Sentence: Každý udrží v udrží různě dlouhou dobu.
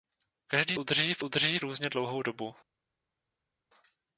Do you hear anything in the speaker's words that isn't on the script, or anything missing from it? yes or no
no